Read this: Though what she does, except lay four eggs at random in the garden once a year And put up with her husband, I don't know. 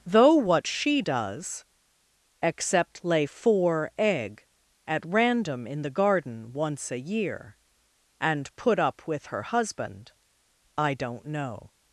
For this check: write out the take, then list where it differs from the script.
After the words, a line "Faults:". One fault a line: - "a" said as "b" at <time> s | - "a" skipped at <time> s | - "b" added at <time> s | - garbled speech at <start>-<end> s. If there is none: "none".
Though what she does, except lay four egg at random in the garden once a year And put up with her husband, I don't know.
Faults:
- "eggs" said as "egg" at 4.0 s